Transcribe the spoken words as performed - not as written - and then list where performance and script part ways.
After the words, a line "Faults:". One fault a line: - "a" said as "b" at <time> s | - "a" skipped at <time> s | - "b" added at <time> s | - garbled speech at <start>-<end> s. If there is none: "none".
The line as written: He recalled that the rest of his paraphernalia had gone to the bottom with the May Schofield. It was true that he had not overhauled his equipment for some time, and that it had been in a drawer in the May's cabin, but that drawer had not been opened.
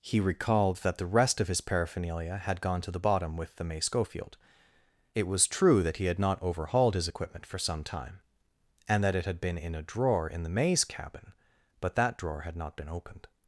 He recalled that the rest of his paraphernalia had gone to the bottom with the May Schofield. It was true that he had not overhauled his equipment for some time, and that it had been in a drawer in the May's cabin, but that drawer had not been opened.
Faults:
none